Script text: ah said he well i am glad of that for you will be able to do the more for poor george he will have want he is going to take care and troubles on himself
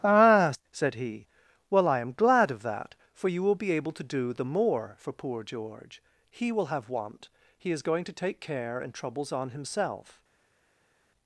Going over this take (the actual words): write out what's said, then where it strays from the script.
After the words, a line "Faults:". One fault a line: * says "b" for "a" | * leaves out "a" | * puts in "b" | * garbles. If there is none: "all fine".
ah said he well i am glad of that for you will be able to do the more for poor george he will have want he is going to take care and troubles on himself
Faults:
all fine